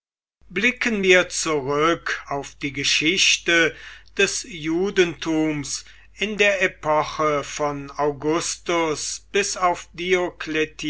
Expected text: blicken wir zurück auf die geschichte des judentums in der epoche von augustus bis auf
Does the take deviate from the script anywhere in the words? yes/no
no